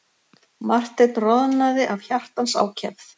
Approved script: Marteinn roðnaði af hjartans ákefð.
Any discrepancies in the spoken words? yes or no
no